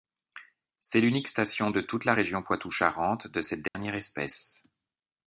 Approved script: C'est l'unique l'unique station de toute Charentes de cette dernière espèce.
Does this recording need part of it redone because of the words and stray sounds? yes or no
yes